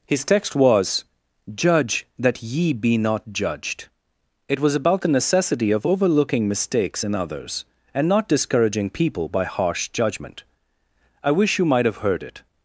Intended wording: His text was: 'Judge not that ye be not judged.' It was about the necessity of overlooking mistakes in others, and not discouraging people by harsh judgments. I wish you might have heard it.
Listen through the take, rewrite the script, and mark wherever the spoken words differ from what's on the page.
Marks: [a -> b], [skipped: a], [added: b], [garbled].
His text was: 'Judge [skipped: not] that ye be not judged.' It was about the necessity of overlooking mistakes in others, and not discouraging people by harsh [judgments. -> judgment] I wish you might have heard it.